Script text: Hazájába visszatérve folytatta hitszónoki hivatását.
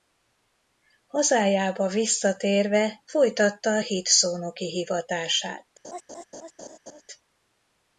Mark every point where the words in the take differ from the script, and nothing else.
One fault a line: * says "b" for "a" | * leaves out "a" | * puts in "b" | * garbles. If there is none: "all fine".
all fine